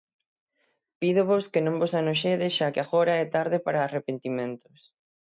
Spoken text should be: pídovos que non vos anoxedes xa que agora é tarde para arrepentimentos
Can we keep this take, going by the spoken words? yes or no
yes